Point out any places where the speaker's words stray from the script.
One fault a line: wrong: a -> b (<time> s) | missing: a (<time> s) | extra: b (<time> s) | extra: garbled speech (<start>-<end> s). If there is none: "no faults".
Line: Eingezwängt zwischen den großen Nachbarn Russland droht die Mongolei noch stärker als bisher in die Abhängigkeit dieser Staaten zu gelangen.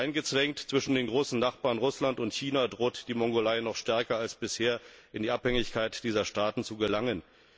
extra: und China (2.2 s)